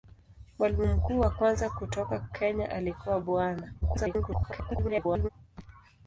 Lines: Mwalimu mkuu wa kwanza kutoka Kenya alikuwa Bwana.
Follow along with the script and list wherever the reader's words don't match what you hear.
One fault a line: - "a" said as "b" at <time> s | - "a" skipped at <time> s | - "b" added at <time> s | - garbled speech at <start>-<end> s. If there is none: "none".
- garbled speech at 3.8-5.3 s